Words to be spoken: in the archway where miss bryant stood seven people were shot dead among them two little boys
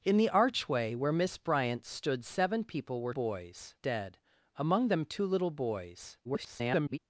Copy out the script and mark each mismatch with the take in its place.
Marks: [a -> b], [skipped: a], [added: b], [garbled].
in the archway where miss bryant stood seven people were [shot -> boys] dead among them two little boys [garbled]